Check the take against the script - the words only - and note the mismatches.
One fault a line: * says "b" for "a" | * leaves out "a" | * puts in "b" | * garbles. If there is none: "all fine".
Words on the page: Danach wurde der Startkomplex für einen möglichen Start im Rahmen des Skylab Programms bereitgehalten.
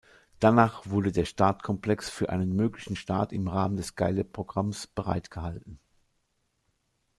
all fine